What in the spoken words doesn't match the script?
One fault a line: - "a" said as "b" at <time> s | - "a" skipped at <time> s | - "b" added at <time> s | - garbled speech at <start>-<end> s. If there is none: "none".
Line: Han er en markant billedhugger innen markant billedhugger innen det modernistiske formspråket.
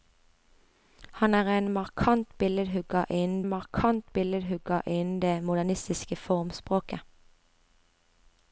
none